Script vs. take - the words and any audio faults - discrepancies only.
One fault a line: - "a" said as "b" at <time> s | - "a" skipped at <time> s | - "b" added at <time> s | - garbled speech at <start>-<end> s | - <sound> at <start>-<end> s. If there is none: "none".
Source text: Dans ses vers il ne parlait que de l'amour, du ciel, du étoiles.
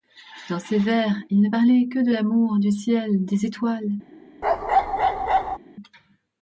- "du" said as "des" at 3.2 s
- bark at 4.4-5.6 s